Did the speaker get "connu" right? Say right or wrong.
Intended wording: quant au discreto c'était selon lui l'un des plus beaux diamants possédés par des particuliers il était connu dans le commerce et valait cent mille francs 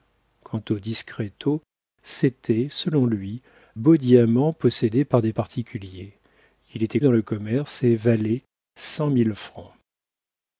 wrong